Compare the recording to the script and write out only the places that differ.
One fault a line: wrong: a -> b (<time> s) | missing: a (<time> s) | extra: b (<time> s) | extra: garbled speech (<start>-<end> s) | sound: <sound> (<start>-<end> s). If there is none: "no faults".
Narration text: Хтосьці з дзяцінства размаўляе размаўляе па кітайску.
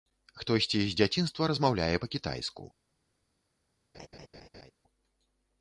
missing: размаўляе (2.0 s)
sound: laugh (3.9-4.7 s)